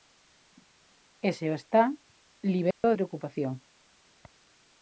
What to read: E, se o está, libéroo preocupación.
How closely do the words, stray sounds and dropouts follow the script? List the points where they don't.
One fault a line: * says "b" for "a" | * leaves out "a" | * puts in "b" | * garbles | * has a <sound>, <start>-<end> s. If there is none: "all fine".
* has a dropout, 2.7-2.8 s